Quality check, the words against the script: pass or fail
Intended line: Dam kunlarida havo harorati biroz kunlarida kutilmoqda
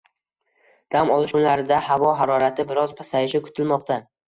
fail